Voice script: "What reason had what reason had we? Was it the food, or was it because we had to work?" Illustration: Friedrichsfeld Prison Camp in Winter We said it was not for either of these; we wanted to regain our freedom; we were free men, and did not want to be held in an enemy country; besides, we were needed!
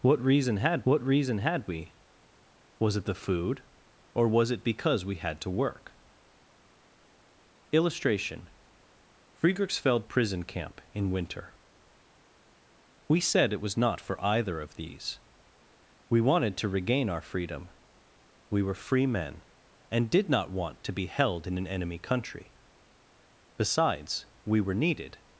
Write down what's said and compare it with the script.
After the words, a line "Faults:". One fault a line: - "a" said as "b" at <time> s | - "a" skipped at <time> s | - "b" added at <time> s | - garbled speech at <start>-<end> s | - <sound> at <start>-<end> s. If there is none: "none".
"What reason had what reason had we? Was it the food, or was it because we had to work?" Illustration: Friedrichsfeld Prison Camp in Winter We said it was not for either of these; we wanted to regain our freedom; we were free men, and did not want to be held in an enemy country; besides, we were needed!
Faults:
none